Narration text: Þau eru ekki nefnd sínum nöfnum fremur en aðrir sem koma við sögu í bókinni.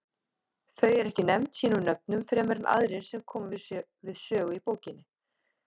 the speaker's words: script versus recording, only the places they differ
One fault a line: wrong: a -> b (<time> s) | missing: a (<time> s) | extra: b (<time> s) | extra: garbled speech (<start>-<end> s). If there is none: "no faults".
no faults